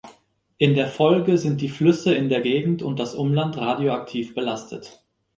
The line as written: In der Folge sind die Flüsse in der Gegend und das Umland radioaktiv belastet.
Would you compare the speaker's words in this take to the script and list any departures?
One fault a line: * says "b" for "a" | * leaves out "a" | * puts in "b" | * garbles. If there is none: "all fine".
all fine